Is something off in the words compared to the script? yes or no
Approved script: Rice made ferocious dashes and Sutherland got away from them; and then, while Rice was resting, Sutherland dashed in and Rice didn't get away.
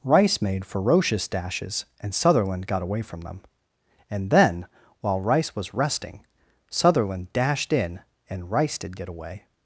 yes